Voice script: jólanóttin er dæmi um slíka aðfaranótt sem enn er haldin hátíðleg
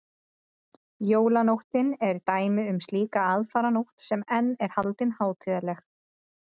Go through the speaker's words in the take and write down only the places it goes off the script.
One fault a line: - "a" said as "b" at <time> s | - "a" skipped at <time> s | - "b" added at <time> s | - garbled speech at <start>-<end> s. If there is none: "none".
none